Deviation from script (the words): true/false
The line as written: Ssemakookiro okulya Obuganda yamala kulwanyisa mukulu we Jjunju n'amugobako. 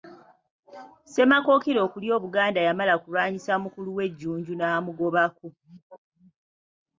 false